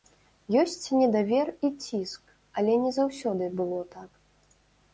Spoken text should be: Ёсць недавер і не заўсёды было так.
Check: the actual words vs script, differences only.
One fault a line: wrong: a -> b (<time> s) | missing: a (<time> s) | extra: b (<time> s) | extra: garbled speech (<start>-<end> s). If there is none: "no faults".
extra: ціск але (1.9 s)